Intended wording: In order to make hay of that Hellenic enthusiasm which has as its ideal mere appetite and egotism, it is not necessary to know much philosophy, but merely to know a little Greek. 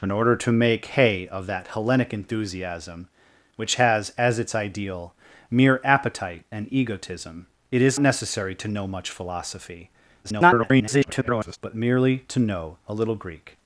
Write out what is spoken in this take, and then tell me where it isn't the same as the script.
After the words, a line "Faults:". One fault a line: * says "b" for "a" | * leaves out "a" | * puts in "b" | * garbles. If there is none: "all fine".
In order to make hay of that Hellenic enthusiasm which has as its ideal mere appetite and egotism, it is necessary to know much philosophy, [garbled] but merely to know a little Greek.
Faults:
* leaves out "not"
* garbles